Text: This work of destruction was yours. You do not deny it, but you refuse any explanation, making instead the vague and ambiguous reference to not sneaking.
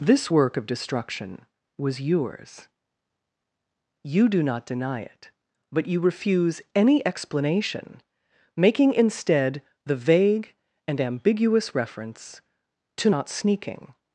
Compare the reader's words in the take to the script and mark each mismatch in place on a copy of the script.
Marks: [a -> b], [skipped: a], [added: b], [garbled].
This work of destruction was yours. You do not deny it, but you refuse any explanation, making instead the vague and ambiguous reference to not sneaking.